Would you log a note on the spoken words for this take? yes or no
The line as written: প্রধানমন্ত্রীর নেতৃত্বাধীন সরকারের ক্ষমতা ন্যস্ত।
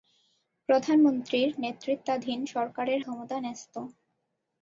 no